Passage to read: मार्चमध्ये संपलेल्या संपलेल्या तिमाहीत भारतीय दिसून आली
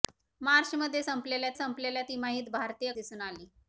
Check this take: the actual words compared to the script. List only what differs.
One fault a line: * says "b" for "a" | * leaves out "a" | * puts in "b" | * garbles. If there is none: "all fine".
all fine